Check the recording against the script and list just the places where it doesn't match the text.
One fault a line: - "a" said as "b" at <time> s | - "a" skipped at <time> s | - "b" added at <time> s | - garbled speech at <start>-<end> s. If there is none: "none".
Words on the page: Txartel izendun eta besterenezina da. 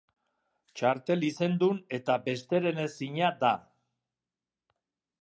none